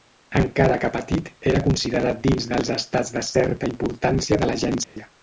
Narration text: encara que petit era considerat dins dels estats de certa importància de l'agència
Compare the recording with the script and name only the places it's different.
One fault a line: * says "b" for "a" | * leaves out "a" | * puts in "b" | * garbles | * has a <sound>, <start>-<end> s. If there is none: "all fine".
* has a dropout, 4.8-5.0 s